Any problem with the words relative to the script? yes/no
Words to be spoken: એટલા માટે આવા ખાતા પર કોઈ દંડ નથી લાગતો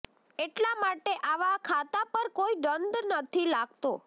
no